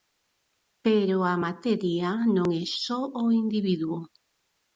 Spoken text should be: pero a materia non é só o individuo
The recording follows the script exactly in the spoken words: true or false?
true